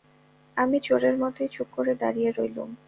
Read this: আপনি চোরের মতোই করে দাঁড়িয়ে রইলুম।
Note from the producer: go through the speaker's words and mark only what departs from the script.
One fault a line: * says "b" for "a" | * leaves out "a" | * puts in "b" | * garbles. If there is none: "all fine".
* says "আমি" for "আপনি"
* puts in "চুপ"